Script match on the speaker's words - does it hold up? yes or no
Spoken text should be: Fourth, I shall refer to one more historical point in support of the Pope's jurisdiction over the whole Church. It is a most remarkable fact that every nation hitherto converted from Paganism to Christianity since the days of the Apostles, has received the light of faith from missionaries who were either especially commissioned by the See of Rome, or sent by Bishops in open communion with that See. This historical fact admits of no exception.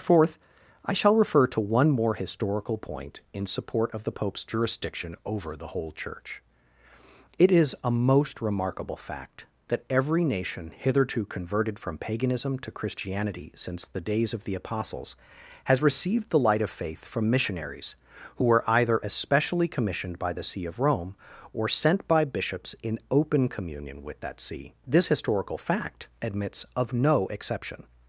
yes